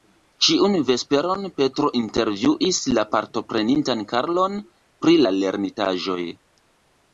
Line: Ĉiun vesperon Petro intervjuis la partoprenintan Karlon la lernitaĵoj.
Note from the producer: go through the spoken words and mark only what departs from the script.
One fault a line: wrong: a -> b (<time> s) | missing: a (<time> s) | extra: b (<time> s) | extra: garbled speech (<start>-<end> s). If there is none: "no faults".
extra: pri (5.0 s)